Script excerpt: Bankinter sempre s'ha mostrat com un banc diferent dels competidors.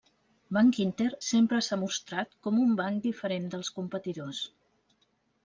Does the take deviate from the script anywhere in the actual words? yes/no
no